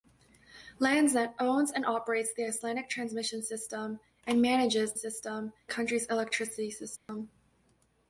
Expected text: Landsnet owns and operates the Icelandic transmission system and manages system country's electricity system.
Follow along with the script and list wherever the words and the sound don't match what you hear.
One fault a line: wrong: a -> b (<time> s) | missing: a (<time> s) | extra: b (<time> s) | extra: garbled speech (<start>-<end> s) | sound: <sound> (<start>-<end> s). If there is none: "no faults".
sound: dropout (7.0-7.1 s)